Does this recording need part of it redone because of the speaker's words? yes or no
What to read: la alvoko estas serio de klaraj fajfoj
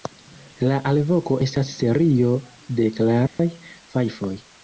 no